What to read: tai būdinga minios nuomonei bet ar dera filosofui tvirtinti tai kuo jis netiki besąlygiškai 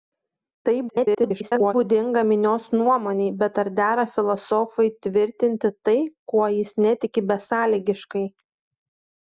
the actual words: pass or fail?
fail